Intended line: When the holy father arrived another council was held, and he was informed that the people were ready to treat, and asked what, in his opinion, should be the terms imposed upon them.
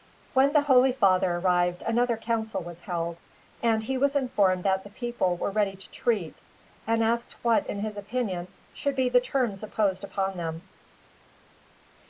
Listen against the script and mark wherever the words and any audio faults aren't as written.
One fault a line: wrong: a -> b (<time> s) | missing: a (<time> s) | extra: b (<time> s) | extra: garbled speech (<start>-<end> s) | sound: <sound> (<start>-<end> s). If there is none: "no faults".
no faults